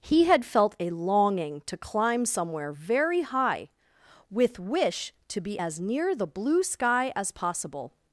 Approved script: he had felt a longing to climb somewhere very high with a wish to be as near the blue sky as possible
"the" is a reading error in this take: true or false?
false